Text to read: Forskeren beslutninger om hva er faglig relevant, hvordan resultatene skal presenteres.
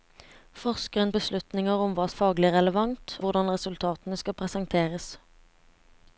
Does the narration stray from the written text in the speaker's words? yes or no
no